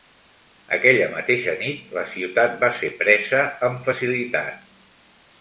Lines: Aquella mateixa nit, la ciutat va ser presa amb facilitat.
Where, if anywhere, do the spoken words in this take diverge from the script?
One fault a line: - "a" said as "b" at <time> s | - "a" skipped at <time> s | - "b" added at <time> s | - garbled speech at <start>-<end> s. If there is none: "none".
none